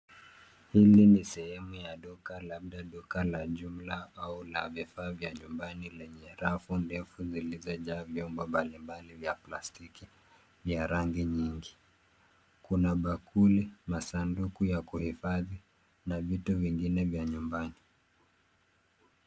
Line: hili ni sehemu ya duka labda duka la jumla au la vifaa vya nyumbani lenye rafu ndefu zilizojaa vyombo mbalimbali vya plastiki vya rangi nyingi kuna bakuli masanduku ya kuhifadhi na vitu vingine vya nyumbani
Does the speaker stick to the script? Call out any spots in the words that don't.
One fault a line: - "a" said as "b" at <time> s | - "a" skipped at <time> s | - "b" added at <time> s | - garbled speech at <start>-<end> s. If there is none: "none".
none